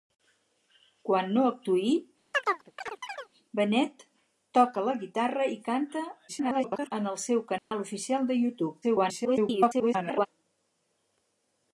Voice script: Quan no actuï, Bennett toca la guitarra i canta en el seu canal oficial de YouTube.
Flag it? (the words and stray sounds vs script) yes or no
yes